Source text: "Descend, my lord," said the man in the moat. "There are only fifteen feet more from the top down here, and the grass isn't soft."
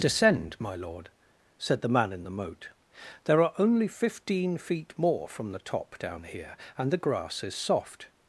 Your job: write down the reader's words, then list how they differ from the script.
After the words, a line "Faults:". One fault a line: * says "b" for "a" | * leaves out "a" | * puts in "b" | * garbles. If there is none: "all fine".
"Descend, my lord," said the man in the moat. "There are only fifteen feet more from the top down here, and the grass is soft."
Faults:
* says "is" for "isn't"